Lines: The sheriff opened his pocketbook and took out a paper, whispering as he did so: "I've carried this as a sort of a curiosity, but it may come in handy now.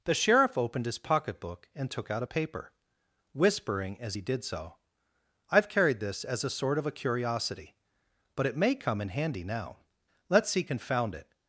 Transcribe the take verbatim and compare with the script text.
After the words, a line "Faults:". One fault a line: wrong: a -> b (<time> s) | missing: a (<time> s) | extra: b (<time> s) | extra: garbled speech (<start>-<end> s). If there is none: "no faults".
The sheriff opened his pocketbook and took out a paper, whispering as he did so: "I've carried this as a sort of a curiosity, but it may come in handy now. Let's see confound it
Faults:
extra: Let's see confound it (10.3 s)